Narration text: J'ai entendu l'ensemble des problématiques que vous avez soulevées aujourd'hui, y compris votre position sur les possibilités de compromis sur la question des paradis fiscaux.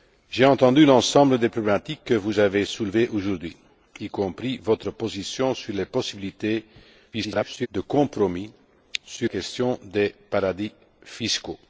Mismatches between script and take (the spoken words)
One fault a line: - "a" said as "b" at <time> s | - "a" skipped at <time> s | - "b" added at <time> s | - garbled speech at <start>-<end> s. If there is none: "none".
- garbled speech at 7.1-7.7 s
- "la" skipped at 9.3 s